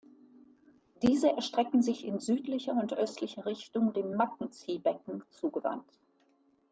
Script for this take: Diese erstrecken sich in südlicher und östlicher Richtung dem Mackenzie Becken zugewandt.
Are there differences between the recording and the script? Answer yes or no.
no